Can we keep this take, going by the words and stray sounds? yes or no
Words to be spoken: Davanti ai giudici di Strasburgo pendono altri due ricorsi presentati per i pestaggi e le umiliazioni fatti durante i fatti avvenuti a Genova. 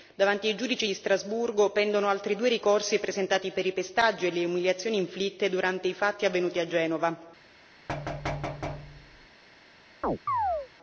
no